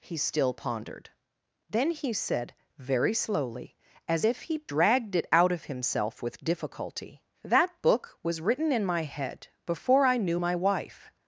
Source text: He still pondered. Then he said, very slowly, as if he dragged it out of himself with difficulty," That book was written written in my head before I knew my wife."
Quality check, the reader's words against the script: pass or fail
fail